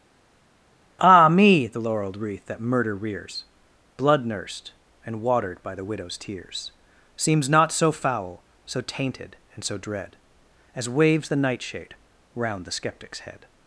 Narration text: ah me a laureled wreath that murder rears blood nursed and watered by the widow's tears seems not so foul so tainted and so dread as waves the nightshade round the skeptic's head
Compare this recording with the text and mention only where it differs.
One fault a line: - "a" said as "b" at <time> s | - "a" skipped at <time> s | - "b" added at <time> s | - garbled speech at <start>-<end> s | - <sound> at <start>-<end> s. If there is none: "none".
- "a" said as "the" at 1.7 s